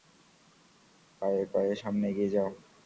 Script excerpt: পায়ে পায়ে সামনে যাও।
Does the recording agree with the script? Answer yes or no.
no